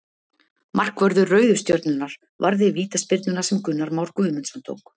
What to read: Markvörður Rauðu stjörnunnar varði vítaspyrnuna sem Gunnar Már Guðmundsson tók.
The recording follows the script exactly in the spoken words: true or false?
true